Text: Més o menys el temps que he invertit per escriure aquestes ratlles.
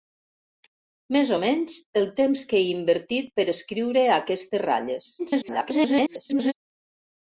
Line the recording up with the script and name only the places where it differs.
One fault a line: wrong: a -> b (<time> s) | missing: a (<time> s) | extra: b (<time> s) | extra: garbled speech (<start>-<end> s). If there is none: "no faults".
extra: garbled speech (5.2-6.5 s)